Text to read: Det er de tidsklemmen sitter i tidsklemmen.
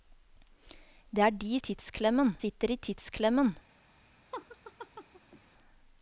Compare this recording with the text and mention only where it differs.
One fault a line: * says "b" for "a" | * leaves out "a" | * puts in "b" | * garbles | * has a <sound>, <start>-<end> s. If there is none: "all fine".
* has a laugh, 4.3-5.4 s